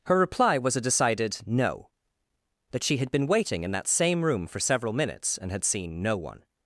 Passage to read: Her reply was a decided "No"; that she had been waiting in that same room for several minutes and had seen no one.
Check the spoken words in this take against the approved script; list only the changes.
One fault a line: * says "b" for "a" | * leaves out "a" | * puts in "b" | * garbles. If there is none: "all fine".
all fine